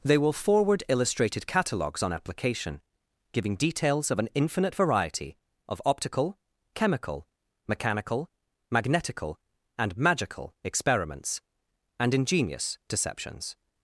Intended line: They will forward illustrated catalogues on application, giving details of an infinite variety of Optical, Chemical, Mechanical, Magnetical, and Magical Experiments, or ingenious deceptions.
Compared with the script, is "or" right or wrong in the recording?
wrong